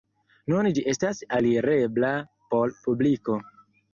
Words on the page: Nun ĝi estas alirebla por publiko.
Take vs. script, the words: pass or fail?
pass